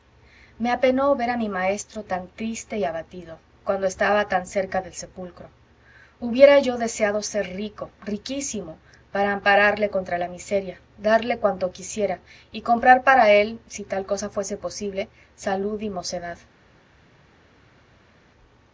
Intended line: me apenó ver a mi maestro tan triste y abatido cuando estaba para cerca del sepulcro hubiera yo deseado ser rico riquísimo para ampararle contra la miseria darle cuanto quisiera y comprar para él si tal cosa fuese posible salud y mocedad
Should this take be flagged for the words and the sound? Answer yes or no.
yes